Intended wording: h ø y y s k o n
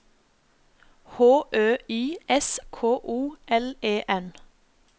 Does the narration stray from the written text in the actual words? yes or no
yes